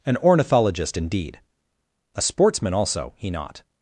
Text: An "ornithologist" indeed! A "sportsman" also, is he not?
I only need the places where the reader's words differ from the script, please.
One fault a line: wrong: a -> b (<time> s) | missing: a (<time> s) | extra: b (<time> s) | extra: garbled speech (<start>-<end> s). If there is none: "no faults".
missing: is (3.1 s)